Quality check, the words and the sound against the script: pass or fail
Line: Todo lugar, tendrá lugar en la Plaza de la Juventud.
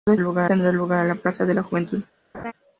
fail